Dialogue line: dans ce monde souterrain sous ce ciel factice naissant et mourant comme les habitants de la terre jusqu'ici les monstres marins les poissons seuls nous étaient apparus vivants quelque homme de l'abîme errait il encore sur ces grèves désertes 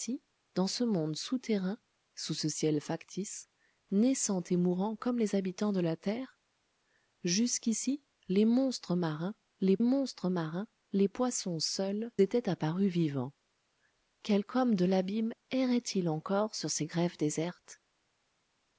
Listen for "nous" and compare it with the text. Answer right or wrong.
wrong